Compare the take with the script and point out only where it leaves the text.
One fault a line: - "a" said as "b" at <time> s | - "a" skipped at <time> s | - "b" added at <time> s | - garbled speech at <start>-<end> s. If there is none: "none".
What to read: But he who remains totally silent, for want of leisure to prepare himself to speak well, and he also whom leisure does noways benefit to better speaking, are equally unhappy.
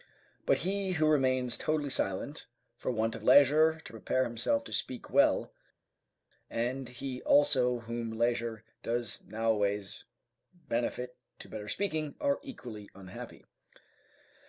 none